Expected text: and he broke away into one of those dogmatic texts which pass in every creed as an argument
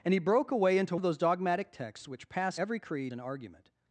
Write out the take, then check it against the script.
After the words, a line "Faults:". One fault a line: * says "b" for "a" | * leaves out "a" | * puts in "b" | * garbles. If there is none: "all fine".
and he broke away into of those dogmatic texts which pass every creed an argument
Faults:
* leaves out "one"
* leaves out "in"
* leaves out "as"